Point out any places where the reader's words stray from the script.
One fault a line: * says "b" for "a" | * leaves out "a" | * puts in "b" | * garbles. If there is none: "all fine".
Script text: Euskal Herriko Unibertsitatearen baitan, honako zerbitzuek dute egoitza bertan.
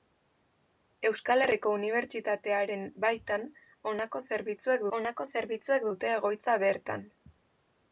* puts in "honako zerbitzuek"